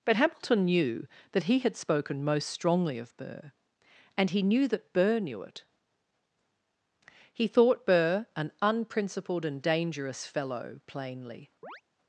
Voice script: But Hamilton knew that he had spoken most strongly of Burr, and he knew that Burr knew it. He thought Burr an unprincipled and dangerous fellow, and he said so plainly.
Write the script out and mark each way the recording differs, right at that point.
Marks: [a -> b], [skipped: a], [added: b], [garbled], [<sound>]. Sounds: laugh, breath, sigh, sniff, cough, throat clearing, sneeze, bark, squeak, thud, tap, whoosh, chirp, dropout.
But Hamilton knew that he had spoken most strongly of Burr, and he knew that Burr knew it. He thought Burr an unprincipled and dangerous fellow, [skipped: and he said so] plainly. [chirp]